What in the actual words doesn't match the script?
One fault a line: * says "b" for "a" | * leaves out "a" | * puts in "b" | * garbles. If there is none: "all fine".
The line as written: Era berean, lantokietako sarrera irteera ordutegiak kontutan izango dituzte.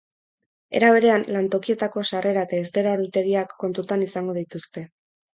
* puts in "eta"